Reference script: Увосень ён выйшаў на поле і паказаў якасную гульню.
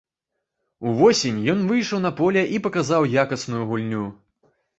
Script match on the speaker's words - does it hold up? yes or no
yes